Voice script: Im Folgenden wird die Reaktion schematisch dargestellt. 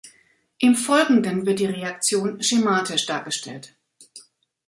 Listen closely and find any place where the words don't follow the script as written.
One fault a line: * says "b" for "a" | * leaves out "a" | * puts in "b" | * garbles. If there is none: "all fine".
all fine